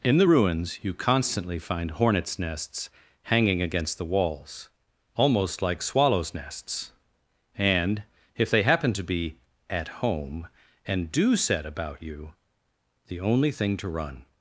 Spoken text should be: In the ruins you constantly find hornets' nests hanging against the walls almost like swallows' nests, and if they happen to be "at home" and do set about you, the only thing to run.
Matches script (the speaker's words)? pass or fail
pass